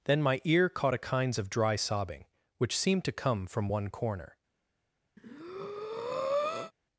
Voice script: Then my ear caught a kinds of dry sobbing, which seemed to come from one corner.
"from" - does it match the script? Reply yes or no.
yes